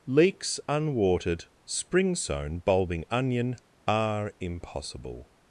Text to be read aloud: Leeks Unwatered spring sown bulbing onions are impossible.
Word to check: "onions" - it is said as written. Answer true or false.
false